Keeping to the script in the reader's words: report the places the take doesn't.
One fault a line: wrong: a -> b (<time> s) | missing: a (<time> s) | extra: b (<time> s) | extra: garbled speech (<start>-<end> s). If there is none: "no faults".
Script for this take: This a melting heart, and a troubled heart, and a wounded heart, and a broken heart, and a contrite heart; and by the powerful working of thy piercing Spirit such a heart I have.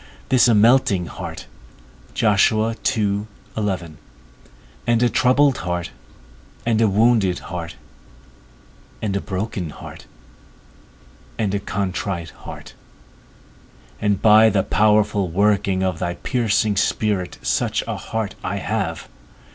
no faults